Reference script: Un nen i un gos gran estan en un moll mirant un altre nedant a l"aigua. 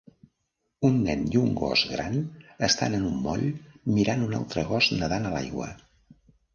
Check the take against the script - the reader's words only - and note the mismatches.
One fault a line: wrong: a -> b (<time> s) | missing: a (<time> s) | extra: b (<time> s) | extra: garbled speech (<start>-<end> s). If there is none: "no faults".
extra: gos (4.8 s)